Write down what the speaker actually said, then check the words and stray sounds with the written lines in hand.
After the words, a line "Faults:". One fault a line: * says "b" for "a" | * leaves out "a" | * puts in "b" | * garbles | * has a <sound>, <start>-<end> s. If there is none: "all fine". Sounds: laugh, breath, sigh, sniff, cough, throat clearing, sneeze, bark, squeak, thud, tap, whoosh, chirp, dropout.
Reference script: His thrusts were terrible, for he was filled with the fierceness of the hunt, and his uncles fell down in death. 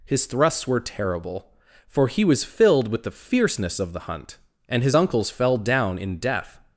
His thrusts were terrible, for he was filled with the fierceness of the hunt, and his uncles fell down in death.
Faults:
all fine